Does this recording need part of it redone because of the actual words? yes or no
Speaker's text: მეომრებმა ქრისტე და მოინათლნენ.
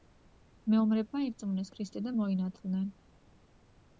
yes